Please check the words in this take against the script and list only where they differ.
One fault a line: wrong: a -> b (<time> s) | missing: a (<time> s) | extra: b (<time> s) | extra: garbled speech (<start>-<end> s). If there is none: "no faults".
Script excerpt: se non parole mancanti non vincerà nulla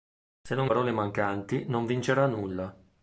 no faults